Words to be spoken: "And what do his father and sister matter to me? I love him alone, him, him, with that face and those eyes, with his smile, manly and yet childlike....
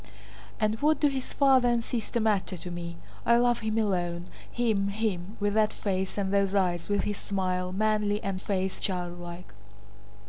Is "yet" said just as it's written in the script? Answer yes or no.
no